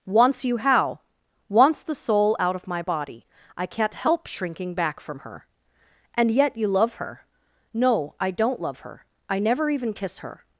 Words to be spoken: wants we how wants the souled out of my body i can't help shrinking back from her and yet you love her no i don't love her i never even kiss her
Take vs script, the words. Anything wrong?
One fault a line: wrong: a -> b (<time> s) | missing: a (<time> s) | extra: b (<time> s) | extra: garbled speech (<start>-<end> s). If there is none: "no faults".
wrong: we -> you (0.5 s)
wrong: souled -> soul (1.9 s)